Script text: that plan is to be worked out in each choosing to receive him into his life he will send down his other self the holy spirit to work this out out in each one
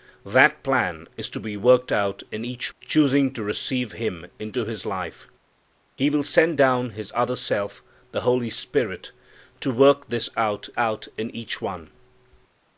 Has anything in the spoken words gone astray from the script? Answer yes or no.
no